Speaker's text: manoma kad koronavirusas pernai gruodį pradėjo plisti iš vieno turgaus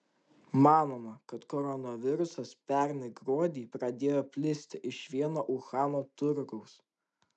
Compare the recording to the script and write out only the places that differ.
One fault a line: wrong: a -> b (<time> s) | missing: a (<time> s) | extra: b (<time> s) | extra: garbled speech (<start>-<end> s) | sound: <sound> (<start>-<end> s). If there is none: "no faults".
extra: uhano (5.6 s)